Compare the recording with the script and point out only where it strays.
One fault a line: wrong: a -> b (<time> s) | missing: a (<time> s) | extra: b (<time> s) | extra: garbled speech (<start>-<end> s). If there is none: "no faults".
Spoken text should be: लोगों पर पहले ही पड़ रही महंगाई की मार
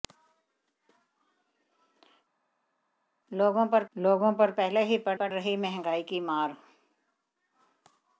extra: लोगों पर (3.9 s)
extra: पड़ (5.1 s)